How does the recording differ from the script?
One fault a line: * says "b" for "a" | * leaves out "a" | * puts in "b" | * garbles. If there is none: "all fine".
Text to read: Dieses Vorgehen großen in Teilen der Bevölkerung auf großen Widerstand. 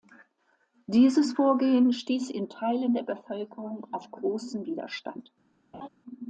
* says "stieß" for "großen"